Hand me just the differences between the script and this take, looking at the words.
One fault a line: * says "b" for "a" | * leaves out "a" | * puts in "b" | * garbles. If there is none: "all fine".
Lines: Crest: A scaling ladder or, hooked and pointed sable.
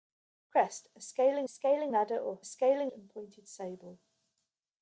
* puts in "scaling"
* says "scaling" for "hooked"